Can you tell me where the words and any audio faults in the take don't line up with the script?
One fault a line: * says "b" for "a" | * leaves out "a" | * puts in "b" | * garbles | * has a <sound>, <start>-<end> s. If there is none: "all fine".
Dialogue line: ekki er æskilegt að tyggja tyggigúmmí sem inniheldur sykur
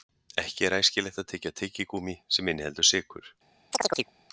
* has a chirp, 3.7-4.1 s